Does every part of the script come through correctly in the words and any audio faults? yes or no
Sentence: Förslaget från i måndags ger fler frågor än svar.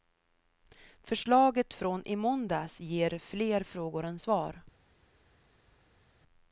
yes